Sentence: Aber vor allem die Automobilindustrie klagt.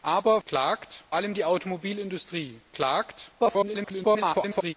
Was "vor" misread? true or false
true